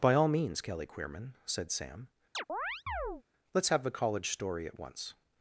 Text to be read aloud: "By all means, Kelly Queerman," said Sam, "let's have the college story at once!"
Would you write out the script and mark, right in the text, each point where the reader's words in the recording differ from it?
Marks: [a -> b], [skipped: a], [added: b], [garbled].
"By all means, Kelly Queerman," said Sam, "let's have the college story at once!"